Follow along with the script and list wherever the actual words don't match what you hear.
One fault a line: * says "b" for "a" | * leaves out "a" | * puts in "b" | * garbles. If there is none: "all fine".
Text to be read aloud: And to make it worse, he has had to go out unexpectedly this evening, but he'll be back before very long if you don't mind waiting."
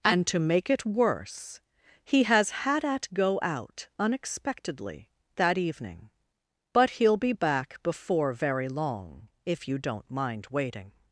* says "at" for "to"
* says "that" for "this"